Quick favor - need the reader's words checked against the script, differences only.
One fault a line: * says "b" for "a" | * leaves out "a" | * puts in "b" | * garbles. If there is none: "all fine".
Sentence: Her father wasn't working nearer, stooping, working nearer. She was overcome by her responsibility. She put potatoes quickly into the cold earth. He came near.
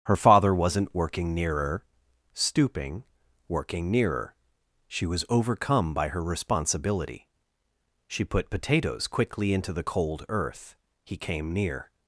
all fine